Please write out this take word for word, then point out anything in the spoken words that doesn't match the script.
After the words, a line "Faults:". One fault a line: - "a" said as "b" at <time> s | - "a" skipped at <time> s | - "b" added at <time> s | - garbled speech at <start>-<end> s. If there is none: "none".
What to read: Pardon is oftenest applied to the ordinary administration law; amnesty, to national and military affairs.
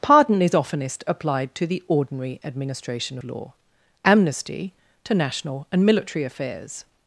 Pardon is oftenest applied to the ordinary administration law; amnesty, to national and military affairs.
Faults:
none